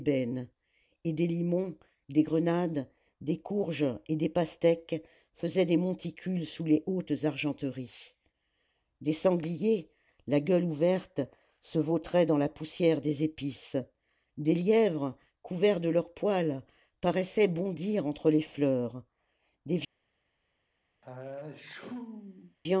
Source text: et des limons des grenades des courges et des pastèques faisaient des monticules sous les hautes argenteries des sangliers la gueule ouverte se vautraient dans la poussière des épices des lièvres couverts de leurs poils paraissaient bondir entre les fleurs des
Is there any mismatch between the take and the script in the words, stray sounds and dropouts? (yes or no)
yes